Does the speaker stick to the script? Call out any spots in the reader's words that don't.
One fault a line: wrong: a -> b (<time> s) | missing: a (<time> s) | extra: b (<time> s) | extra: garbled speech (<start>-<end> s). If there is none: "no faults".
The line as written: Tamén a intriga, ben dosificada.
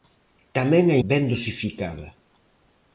missing: intriga (1.0 s)